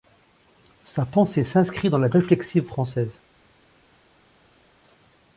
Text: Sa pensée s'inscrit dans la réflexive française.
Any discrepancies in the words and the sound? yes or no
no